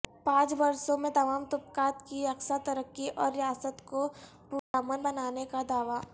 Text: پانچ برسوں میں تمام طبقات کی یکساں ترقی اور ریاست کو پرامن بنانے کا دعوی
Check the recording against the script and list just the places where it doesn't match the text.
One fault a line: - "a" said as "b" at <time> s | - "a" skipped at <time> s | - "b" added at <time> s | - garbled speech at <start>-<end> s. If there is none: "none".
none